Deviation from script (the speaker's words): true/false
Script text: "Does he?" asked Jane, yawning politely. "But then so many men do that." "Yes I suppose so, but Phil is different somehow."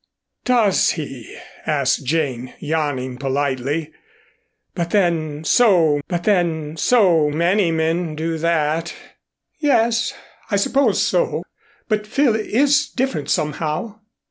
true